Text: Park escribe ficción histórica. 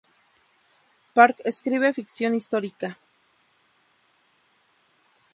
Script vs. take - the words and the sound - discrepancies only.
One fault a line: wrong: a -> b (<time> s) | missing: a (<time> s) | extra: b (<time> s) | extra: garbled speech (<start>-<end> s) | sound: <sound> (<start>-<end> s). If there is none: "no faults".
no faults